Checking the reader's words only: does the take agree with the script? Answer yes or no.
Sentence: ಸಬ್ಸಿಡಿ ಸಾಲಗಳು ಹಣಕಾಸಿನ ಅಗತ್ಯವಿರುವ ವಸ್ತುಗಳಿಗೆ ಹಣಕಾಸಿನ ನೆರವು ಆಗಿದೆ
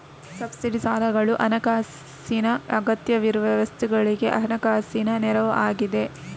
yes